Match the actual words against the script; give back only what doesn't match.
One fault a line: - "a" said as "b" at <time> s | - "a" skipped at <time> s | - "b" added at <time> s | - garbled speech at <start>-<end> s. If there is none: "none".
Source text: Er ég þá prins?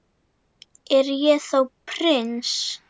none